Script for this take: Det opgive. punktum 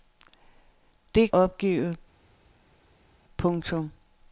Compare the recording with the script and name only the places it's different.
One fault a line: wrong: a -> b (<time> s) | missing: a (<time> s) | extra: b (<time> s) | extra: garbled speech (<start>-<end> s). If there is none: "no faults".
no faults